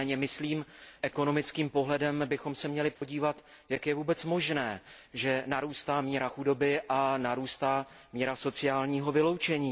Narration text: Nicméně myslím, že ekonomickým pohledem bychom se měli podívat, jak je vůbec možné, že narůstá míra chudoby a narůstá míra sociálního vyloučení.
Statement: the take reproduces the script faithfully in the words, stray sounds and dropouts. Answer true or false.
false